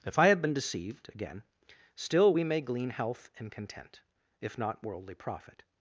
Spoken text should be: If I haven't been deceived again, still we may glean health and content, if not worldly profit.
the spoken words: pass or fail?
fail